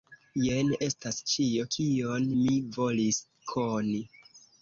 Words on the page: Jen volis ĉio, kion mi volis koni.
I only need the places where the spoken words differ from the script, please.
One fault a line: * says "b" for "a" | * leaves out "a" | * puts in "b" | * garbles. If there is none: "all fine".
* says "estas" for "volis"